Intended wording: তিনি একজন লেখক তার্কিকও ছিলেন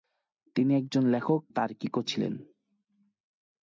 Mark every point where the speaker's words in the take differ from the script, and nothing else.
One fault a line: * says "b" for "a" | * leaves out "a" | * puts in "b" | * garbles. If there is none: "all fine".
all fine